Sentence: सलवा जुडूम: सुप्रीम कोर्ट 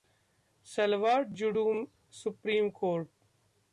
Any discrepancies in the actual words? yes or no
no